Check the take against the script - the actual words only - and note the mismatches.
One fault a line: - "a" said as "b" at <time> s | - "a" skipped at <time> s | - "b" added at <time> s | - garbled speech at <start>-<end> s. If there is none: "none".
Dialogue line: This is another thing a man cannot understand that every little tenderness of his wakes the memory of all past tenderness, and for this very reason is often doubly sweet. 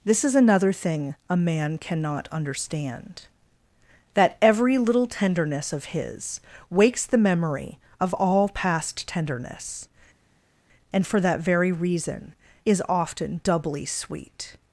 - "this" said as "that" at 11.2 s